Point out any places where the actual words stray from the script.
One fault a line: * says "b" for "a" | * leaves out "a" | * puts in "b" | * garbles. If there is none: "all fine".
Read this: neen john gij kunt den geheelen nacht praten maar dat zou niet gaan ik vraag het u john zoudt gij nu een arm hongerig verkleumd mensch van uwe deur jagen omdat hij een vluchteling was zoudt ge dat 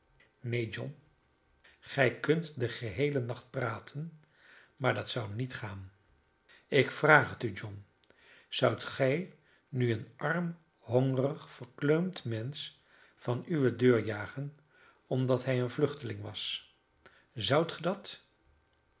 all fine